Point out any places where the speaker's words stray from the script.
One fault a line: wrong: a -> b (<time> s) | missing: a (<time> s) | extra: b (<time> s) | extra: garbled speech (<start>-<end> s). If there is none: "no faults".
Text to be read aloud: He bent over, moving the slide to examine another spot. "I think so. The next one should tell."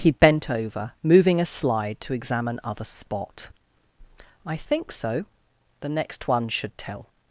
wrong: the -> a (1.4 s)
wrong: another -> other (2.6 s)